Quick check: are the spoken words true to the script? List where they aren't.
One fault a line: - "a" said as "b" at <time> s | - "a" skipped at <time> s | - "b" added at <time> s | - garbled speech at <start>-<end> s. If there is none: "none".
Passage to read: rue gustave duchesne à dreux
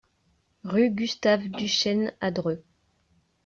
none